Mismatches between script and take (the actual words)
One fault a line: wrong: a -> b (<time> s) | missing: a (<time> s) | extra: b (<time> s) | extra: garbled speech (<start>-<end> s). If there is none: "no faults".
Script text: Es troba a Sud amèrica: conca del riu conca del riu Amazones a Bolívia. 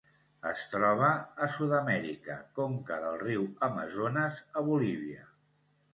missing: conca del riu (3.5 s)